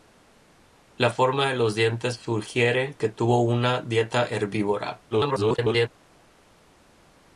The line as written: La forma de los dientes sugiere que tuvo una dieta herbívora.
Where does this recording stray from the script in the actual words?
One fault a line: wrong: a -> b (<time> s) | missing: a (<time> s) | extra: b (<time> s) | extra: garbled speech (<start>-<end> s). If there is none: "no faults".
extra: garbled speech (5.1-5.9 s)